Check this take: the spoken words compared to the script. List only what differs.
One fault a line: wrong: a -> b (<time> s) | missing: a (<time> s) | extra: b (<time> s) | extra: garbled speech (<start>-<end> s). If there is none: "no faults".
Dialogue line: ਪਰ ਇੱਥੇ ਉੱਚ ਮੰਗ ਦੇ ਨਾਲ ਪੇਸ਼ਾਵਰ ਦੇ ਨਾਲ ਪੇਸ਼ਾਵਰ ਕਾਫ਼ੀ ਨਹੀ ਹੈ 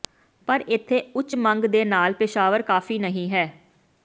missing: ਦੇ ਨਾਲ ਪੇਸ਼ਾਵਰ (2.6 s)